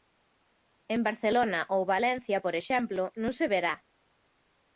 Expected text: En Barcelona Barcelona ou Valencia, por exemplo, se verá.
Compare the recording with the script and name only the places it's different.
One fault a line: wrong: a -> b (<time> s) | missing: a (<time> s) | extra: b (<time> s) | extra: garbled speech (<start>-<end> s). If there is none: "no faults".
missing: Barcelona (1.6 s)
extra: non (3.2 s)